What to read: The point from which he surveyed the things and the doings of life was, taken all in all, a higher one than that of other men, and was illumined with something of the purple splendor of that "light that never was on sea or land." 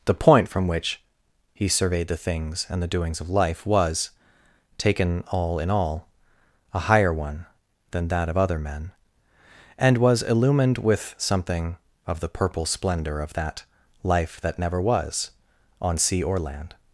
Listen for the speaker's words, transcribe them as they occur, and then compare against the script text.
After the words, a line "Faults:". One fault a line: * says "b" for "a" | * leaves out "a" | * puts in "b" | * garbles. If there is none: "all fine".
The point from which he surveyed the things and the doings of life was, taken all in all, a higher one than that of other men, and was illumined with something of the purple splendor of that "life that never was on sea or land."
Faults:
* says "life" for "light"